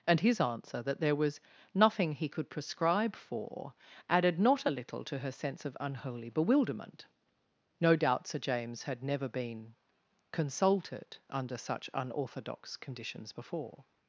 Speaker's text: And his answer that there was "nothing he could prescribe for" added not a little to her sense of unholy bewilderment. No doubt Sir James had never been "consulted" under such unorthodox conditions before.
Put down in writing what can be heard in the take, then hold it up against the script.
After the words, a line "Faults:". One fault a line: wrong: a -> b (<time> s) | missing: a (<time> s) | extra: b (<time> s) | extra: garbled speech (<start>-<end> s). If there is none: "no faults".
And his answer that there was "nothing he could prescribe for" added not a little to her sense of unholy bewilderment. No doubt Sir James had never been "consulted" under such unorthodox conditions before.
Faults:
no faults